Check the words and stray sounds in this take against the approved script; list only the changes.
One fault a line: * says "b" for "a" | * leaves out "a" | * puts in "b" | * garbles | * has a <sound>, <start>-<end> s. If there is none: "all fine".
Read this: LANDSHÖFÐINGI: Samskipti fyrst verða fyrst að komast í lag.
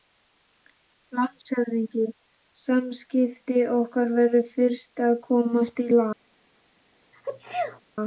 * has a dropout, 1.4-1.5 s
* says "okkar" for "fyrst"
* has a sneeze, 7.1-7.8 s